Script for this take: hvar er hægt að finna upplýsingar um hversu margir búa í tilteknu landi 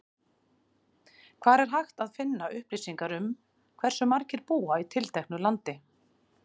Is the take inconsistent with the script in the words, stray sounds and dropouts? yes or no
no